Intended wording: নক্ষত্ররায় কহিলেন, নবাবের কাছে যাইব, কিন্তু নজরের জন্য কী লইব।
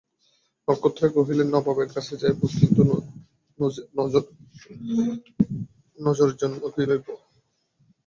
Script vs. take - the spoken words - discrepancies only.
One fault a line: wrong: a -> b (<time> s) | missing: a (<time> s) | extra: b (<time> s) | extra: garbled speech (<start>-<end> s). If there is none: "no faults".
no faults